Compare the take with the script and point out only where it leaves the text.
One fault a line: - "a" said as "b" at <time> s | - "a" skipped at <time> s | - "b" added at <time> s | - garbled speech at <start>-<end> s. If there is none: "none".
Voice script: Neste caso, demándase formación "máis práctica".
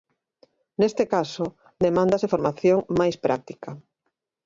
none